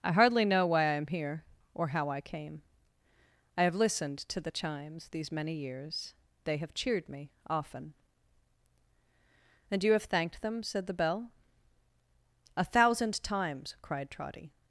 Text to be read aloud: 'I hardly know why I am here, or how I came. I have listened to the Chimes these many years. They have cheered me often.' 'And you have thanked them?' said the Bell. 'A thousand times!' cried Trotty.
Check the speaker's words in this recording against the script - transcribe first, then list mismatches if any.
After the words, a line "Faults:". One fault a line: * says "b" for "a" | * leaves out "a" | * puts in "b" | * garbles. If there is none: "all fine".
'I hardly know why I am here, or how I came. I have listened to the Chimes these many years. They have cheered me often.' 'And you have thanked them?' said the Bell. 'A thousand times!' cried Trotty.
Faults:
all fine